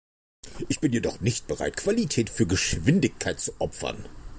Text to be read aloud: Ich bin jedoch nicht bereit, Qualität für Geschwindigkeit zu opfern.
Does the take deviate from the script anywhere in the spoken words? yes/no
no